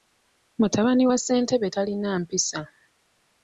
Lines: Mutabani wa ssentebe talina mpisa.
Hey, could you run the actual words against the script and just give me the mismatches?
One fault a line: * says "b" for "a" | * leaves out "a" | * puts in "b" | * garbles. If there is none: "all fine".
all fine